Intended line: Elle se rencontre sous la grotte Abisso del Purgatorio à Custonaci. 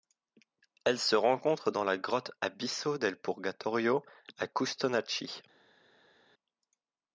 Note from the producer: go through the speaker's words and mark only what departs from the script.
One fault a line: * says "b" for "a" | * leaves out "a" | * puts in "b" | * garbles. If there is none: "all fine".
* says "dans" for "sous"